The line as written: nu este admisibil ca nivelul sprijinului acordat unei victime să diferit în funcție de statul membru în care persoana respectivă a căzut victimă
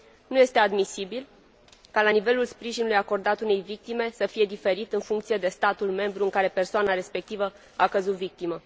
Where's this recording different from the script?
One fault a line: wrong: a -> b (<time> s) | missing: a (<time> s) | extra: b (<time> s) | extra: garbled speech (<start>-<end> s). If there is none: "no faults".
extra: fie (4.3 s)